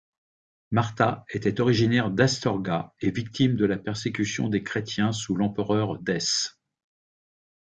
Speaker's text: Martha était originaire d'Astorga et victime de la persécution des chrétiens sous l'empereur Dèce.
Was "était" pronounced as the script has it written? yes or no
yes